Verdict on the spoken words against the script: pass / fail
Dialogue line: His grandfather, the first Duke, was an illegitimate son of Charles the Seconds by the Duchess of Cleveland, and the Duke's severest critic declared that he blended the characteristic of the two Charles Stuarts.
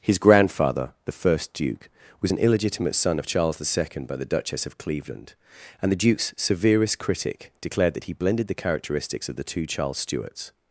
fail